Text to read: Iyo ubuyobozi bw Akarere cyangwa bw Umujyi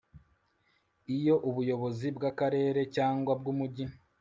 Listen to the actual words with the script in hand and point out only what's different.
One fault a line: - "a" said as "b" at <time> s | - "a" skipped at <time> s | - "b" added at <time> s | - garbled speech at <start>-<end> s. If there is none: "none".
none